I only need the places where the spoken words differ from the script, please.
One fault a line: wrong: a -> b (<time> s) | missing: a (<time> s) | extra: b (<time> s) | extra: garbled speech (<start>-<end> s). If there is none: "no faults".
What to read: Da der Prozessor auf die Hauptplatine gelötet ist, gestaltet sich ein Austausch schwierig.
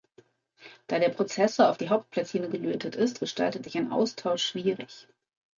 no faults